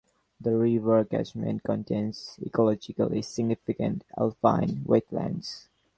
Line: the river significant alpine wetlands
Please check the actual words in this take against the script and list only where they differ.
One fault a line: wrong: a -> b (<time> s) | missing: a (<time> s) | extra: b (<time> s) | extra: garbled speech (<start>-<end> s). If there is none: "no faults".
extra: catchment contains ecologically (1.1 s)